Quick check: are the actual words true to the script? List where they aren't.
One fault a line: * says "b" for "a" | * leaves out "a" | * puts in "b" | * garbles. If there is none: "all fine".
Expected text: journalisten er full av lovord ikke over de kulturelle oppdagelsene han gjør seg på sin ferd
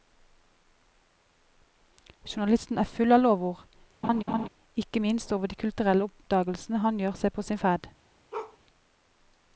* puts in "minst"